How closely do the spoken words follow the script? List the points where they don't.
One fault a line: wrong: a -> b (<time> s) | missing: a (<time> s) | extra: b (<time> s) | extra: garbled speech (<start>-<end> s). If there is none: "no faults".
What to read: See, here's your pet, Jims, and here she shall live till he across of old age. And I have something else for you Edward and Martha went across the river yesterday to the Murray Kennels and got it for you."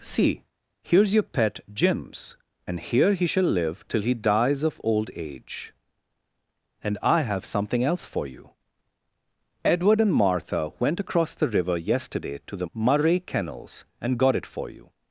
wrong: she -> he (3.1 s)
wrong: across -> dies (4.1 s)